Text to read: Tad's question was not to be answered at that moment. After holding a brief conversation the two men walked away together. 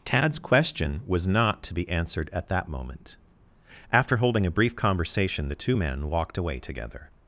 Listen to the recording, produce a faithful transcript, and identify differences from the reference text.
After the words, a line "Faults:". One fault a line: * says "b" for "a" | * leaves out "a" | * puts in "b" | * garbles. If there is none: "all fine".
Tad's question was not to be answered at that moment. After holding a brief conversation the two men walked away together.
Faults:
all fine